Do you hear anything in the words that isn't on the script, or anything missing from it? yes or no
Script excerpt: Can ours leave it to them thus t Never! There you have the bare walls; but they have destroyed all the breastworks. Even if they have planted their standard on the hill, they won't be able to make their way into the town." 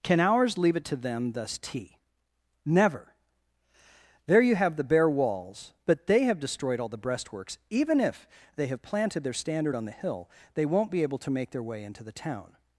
no